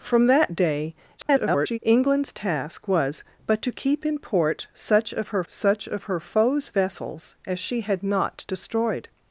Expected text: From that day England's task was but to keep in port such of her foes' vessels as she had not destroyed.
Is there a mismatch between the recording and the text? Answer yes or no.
yes